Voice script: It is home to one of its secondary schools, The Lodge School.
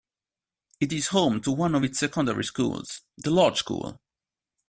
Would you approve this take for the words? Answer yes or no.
yes